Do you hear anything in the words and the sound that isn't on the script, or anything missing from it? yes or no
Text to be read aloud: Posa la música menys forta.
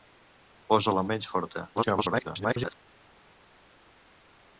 yes